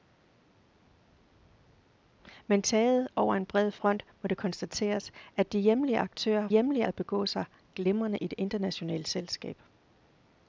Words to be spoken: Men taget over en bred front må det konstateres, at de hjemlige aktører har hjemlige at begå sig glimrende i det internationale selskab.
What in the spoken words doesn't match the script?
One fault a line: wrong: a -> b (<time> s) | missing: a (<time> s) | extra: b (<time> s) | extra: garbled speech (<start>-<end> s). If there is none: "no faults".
no faults